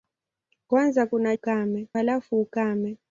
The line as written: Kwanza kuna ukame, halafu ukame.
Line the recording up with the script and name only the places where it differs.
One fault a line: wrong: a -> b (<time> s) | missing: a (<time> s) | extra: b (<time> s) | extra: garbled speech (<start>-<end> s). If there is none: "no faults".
no faults